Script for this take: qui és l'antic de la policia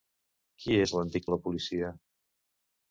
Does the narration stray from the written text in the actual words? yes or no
no